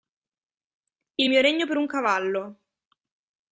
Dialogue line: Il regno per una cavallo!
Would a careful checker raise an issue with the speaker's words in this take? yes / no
yes